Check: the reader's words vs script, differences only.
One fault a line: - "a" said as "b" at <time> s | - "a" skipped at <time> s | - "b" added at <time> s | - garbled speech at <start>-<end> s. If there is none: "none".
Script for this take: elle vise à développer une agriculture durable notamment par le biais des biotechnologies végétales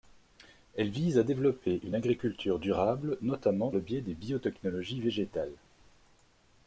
- "par" skipped at 3.7 s